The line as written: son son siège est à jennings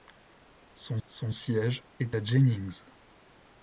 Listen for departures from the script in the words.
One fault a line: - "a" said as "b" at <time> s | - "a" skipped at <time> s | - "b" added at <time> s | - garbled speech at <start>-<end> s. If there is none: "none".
none